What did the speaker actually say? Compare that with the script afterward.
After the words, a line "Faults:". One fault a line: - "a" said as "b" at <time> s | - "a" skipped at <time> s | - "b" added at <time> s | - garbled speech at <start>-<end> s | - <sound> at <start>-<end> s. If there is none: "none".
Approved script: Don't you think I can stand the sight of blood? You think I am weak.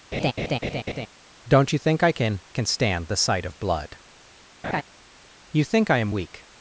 Don't you think I can can stand the sight of blood? You think I am weak.
Faults:
- laugh at 0.1-1.1 s
- "can" added at 2.5 s
- laugh at 4.6-4.8 s